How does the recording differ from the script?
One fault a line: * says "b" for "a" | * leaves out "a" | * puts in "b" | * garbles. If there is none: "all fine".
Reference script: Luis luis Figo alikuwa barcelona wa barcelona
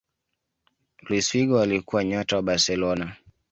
* leaves out "luis"
* says "nyota" for "barcelona"